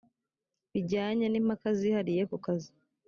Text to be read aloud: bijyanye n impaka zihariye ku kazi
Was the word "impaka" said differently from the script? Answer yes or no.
no